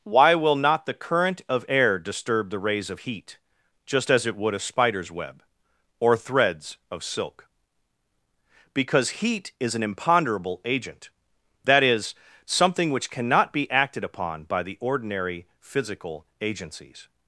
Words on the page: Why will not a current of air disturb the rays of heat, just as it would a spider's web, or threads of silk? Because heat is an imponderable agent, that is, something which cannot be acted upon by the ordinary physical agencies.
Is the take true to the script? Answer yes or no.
no